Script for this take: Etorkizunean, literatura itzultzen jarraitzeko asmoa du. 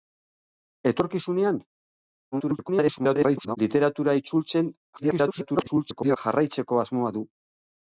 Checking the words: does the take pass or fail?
fail